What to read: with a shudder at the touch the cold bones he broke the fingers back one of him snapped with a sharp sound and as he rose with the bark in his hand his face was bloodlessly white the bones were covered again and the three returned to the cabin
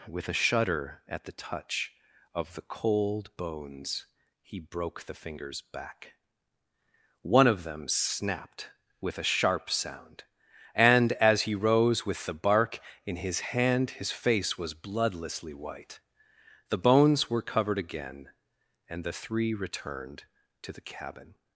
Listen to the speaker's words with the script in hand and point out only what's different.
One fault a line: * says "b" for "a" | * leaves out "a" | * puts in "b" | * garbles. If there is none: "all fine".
* puts in "of"
* says "them" for "him"